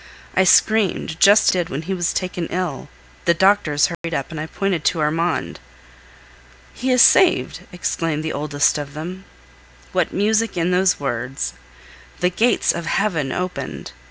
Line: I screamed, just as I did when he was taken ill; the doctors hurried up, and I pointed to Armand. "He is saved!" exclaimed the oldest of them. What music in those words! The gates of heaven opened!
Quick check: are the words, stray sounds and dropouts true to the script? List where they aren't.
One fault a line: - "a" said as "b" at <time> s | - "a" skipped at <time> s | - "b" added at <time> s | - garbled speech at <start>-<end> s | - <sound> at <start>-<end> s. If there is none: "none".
- "as I" skipped at 1.5 s
- dropout at 3.9-4.0 s